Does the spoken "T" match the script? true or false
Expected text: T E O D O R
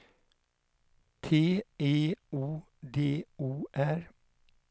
true